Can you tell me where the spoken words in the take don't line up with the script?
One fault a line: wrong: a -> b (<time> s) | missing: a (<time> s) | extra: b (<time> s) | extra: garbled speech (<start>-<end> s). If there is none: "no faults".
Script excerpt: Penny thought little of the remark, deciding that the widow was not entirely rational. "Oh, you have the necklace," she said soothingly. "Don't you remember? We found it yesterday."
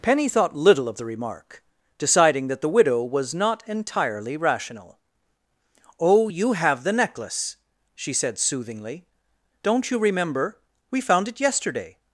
no faults